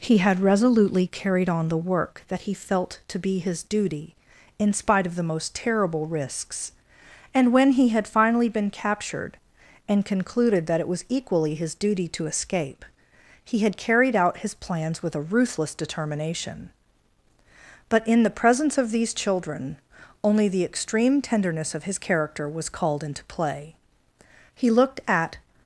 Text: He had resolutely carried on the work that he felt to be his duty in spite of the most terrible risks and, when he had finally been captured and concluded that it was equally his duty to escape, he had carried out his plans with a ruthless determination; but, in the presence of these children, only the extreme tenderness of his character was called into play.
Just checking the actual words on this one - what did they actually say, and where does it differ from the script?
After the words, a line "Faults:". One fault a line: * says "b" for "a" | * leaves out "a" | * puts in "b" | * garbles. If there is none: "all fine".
He had resolutely carried on the work that he felt to be his duty in spite of the most terrible risks and, when he had finally been captured and concluded that it was equally his duty to escape, he had carried out his plans with a ruthless determination; but, in the presence of these children, only the extreme tenderness of his character was called into play. He looked at
Faults:
* puts in "He looked at"